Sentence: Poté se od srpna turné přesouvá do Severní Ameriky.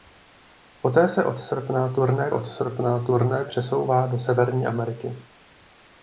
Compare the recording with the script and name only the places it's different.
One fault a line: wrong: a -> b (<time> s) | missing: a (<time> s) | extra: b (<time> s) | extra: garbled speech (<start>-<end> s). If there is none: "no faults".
extra: od srpna turné (2.3 s)